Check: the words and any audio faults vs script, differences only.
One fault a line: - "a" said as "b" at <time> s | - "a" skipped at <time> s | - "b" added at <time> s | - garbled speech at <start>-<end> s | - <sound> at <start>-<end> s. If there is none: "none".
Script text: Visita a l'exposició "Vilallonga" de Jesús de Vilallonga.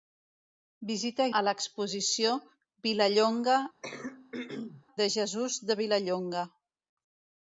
- throat clearing at 3.8-4.8 s